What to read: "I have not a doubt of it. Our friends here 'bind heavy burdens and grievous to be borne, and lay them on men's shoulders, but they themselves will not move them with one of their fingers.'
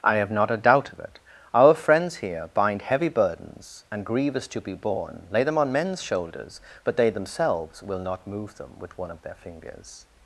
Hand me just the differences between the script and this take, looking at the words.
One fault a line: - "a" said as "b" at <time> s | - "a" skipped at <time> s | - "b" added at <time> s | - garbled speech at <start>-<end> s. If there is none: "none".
- "and" skipped at 5.3 s